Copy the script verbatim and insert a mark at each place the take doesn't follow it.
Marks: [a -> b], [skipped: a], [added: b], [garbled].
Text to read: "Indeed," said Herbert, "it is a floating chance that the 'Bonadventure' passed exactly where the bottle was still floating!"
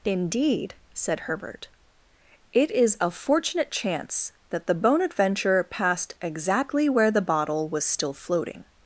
"Indeed," said Herbert, "it is a [floating -> fortunate] chance that the 'Bonadventure' passed exactly where the bottle was still floating!"